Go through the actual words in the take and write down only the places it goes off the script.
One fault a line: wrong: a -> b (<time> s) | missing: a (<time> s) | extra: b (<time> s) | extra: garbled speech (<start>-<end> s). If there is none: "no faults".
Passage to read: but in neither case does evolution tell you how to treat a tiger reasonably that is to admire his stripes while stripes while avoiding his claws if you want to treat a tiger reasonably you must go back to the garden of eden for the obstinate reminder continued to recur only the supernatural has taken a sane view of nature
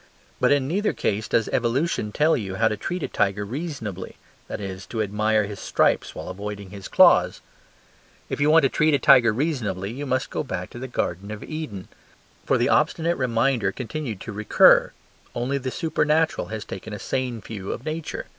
missing: stripes while (6.3 s)